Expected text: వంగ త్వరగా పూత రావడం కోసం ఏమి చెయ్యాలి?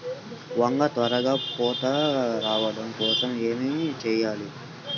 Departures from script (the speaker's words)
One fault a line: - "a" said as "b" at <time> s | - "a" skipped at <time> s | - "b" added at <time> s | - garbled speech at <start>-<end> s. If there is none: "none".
none